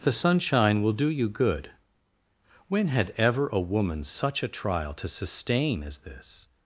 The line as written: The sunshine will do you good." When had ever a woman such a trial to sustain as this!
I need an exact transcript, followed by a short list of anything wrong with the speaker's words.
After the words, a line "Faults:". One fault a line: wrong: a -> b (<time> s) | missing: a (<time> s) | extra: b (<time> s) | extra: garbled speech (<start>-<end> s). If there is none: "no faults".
The sunshine will do you good." When had ever a woman such a trial to sustain as this!
Faults:
no faults